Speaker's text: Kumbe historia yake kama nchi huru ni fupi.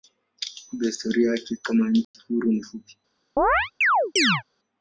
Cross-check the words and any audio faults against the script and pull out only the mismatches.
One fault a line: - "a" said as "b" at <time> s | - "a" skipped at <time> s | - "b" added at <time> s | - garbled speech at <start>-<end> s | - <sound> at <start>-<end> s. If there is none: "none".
- dropout at 2.0-2.1 s
- chirp at 3.4-4.4 s